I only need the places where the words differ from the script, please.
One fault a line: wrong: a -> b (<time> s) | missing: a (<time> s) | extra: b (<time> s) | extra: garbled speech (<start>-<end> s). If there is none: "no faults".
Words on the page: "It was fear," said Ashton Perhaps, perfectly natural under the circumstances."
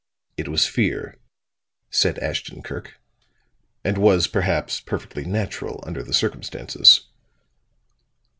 extra: Kirk and was (2.6 s)